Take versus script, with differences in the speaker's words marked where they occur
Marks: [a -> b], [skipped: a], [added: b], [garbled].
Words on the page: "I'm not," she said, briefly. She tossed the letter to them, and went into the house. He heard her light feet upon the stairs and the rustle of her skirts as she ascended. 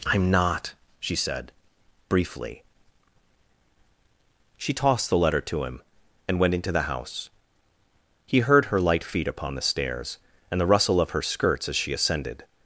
"I'm not," she said, briefly. She tossed the letter to [them, -> him] and went into the house. He heard her light feet upon the stairs and the rustle of her skirts as she ascended.